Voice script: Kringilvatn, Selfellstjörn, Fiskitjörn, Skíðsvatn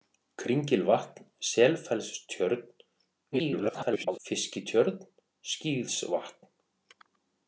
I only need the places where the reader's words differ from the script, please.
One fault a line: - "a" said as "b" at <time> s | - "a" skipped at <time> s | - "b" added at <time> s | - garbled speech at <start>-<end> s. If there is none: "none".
- garbled speech at 3.3-4.2 s